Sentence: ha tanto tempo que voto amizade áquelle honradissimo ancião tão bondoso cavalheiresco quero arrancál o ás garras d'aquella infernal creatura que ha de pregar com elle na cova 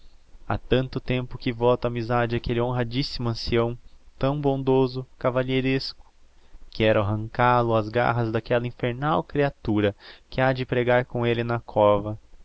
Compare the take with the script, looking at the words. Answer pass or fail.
pass